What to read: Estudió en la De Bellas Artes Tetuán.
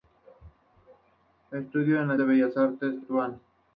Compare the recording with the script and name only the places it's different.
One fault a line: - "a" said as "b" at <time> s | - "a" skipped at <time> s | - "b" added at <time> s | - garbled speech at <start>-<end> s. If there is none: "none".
none